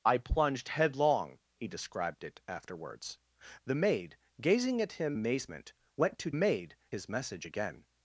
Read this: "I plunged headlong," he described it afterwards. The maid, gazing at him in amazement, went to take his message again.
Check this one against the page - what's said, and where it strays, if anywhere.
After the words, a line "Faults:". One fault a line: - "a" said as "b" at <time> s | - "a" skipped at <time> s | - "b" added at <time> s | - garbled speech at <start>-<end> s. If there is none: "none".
"I plunged headlong," he described it afterwards. The maid, gazing at him amazement, went to maid his message again.
Faults:
- "in" skipped at 5.2 s
- "take" said as "maid" at 6.3 s